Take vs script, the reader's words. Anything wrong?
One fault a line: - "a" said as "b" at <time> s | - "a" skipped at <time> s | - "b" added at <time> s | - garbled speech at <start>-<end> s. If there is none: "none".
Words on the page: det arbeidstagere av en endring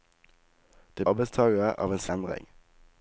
none